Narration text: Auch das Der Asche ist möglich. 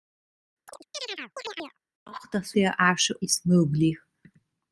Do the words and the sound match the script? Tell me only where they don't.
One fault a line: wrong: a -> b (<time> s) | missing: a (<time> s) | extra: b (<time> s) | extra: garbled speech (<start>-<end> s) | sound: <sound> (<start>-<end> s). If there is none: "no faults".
sound: chirp (0.7-1.8 s)